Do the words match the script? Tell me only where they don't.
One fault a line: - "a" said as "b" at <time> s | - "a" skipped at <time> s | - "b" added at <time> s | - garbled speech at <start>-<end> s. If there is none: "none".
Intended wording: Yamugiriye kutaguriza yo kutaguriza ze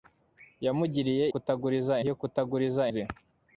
none